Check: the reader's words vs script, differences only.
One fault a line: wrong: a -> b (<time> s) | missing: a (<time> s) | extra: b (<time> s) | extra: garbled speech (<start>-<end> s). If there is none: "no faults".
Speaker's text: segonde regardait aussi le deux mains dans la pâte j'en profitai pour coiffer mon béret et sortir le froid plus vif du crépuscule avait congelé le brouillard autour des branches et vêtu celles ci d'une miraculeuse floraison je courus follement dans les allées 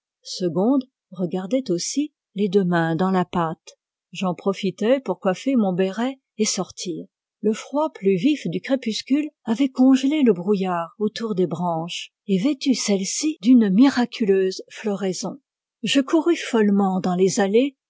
wrong: le -> les (2.4 s)